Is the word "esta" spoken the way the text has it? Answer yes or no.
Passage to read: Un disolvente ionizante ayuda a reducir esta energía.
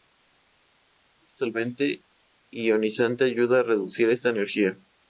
yes